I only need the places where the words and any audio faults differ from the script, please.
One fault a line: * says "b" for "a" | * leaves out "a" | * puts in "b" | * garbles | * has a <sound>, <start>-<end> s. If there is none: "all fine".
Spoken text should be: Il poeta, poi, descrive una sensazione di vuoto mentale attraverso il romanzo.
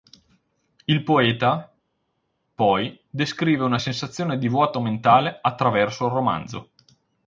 all fine